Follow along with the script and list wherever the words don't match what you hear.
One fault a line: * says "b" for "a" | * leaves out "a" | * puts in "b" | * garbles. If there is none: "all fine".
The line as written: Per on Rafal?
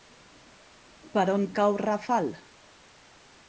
* puts in "cau"